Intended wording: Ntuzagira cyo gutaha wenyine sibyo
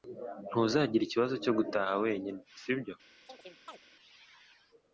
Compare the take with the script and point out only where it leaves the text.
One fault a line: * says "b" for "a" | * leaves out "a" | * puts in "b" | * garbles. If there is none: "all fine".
* puts in "ikibazo"